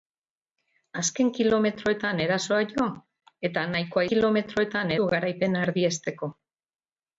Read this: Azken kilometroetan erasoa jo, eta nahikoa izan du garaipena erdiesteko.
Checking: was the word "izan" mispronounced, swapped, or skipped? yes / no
yes